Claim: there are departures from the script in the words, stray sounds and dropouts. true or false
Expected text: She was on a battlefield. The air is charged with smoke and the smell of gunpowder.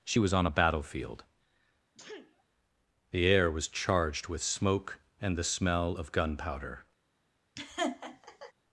true